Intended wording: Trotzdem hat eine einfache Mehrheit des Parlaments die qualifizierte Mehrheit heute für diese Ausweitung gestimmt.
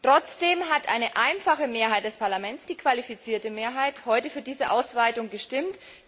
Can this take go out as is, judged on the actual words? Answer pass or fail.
pass